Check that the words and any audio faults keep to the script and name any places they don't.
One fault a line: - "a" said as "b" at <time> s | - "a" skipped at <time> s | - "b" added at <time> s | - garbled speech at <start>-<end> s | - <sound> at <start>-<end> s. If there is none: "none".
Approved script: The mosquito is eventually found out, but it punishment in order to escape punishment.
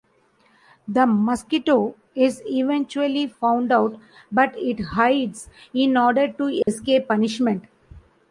- "punishment" said as "hides" at 4.8 s
- dropout at 6.6-6.7 s